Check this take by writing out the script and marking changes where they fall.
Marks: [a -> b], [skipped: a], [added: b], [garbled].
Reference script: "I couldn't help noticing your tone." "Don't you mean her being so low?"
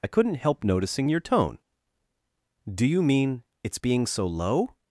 "I couldn't help noticing your tone." ["Don't -> Do] you mean [her -> its] being so low?"